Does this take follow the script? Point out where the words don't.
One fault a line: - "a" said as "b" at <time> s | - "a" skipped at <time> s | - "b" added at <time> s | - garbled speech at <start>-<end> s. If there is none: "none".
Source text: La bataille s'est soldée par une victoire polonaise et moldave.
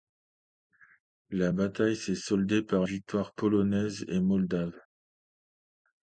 - "une" skipped at 2.8 s